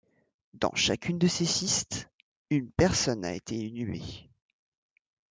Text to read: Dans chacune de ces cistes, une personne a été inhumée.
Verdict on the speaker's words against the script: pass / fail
pass